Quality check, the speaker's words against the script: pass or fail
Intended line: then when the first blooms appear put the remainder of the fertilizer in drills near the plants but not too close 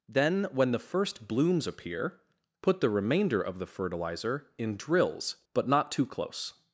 fail